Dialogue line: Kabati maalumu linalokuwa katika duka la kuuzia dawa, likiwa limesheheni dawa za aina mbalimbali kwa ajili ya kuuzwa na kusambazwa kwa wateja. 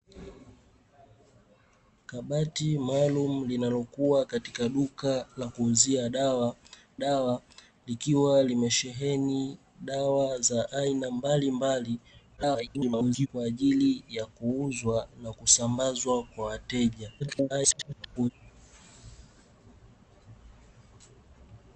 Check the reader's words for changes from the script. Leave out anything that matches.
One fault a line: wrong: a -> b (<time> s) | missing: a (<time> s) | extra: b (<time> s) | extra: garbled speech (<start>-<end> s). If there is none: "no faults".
extra: dawa (7.0 s)
extra: garbled speech (12.4-13.3 s)
extra: garbled speech (17.2-18.3 s)